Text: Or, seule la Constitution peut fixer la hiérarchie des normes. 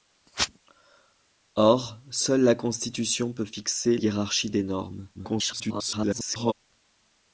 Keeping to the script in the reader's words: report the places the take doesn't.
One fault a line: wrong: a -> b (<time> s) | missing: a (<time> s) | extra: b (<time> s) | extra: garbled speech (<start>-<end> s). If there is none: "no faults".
missing: la (4.0 s)
extra: garbled speech (5.1-6.5 s)